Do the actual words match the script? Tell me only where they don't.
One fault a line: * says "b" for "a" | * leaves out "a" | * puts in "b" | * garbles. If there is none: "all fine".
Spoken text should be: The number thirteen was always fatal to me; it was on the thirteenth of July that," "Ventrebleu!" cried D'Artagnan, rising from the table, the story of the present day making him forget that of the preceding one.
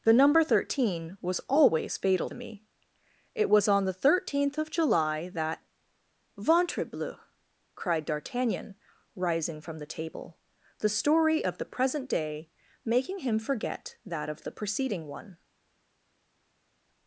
* leaves out "to"